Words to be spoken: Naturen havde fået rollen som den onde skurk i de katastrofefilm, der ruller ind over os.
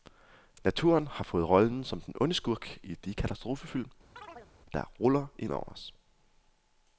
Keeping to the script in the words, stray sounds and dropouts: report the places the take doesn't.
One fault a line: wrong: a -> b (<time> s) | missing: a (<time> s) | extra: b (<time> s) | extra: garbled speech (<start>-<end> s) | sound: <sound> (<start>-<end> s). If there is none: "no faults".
wrong: havde -> har (1.1 s)
sound: chirp (4.2-4.5 s)